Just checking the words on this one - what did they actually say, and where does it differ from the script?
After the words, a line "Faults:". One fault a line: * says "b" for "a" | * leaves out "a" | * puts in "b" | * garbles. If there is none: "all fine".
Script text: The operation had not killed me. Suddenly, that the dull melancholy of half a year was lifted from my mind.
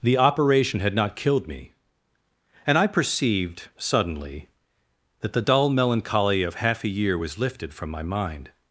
The operation had not killed me. And I perceived, suddenly, that the dull melancholy of half a year was lifted from my mind.
Faults:
* puts in "And I perceived"